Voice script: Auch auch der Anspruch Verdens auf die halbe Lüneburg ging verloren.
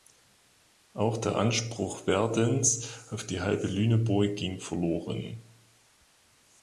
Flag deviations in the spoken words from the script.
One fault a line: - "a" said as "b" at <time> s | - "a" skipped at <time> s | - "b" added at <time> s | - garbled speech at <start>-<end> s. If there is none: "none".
- "auch" skipped at 1.2 s